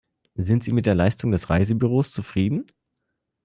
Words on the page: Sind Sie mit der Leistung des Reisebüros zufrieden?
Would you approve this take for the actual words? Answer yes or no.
yes